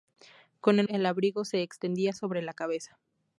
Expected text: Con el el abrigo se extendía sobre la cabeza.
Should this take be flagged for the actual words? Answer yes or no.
no